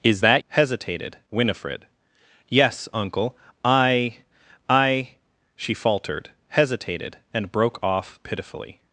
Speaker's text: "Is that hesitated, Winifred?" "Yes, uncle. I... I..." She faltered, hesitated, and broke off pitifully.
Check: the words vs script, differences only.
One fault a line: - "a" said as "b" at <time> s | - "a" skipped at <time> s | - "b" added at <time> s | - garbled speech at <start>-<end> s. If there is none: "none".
none